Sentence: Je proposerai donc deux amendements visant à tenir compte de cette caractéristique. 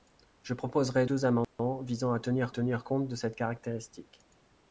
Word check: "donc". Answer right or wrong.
wrong